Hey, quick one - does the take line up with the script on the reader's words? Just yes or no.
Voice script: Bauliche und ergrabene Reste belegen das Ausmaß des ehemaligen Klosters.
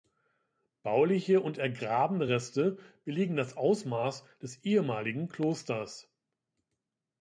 yes